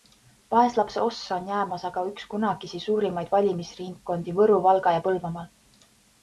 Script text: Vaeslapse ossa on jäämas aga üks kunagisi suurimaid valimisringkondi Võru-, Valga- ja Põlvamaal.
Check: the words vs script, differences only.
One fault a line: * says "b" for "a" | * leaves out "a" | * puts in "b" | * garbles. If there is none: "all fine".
all fine